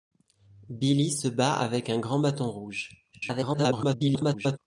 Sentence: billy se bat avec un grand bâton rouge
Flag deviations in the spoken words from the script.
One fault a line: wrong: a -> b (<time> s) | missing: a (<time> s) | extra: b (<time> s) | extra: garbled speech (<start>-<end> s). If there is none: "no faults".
extra: garbled speech (3.1-4.6 s)